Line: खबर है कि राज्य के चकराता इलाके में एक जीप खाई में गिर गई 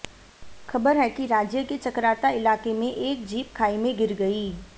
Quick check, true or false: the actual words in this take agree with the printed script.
true